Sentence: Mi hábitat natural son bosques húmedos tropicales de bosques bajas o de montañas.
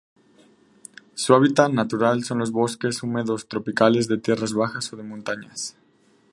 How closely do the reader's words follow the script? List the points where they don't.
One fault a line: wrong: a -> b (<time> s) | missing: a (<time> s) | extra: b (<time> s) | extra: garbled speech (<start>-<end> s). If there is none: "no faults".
wrong: Mi -> Su (1.1 s)
extra: los (2.4 s)
wrong: bosques -> tierras (4.2 s)